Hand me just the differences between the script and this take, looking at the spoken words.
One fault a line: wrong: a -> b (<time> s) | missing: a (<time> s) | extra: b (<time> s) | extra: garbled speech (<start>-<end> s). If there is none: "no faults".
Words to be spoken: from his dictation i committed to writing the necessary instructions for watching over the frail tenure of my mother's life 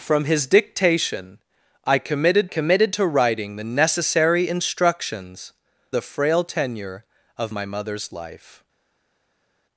extra: committed (2.5 s)
missing: for watching over (5.5 s)